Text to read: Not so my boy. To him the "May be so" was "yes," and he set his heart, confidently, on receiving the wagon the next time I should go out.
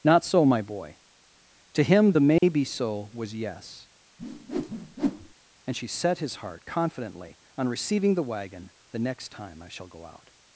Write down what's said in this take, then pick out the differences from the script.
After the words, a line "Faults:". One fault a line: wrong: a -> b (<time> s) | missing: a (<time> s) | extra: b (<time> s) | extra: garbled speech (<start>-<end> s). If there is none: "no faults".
Not so my boy. To him the "May be so" was "yes," and she set his heart, confidently, on receiving the wagon the next time I shall go out.
Faults:
wrong: he -> she (5.8 s)
wrong: should -> shall (9.7 s)